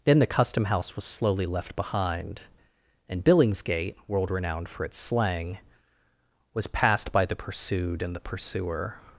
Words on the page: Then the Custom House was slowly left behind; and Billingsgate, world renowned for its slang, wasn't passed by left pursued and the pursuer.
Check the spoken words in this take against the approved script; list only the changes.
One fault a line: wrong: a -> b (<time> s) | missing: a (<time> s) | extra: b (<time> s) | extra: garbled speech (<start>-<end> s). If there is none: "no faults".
wrong: wasn't -> was (6.5 s)
wrong: left -> the (7.3 s)